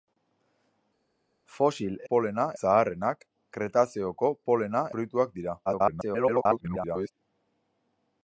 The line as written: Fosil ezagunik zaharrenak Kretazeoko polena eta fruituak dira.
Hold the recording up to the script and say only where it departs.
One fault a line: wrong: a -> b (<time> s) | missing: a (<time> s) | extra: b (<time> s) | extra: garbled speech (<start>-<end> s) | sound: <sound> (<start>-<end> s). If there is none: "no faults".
wrong: ezagunik -> polena (2.1 s)
missing: eta (4.8 s)
extra: garbled speech (5.7-7.1 s)